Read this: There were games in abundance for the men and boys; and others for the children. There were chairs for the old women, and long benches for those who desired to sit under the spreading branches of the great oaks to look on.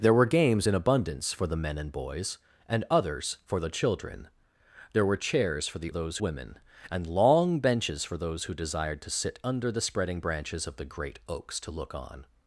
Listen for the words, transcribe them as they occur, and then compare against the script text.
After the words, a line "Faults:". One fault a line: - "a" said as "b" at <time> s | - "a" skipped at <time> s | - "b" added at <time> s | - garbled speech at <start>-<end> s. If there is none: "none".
There were games in abundance for the men and boys; and others for the children. There were chairs for the those women, and long benches for those who desired to sit under the spreading branches of the great oaks to look on.
Faults:
- "old" said as "those" at 5.9 s